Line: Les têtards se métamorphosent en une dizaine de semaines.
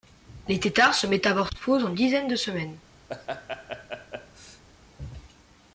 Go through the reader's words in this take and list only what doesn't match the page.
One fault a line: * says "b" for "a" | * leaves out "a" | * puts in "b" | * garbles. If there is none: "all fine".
* leaves out "une"